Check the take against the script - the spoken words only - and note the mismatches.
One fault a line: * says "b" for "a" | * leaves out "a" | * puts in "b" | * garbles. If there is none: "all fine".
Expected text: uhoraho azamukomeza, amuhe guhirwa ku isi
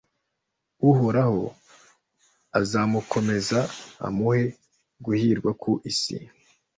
all fine